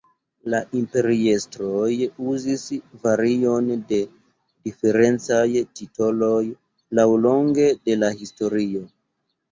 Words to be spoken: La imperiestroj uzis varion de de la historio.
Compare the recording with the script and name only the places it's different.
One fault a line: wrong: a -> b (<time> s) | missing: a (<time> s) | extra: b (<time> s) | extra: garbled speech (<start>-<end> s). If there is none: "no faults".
extra: diferencaj titoloj laŭlonge (4.7 s)